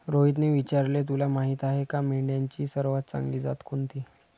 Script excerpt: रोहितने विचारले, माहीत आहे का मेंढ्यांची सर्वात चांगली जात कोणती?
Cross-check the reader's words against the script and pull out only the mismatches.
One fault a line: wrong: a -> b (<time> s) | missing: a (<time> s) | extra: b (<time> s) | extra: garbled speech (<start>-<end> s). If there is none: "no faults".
extra: तुला (1.0 s)